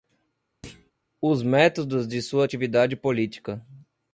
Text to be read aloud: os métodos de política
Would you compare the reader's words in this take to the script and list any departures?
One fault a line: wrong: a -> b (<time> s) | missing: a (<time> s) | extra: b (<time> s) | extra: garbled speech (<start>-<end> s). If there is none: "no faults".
extra: sua atividade (2.2 s)